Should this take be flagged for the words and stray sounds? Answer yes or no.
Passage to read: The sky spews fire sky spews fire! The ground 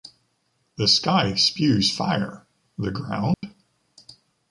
yes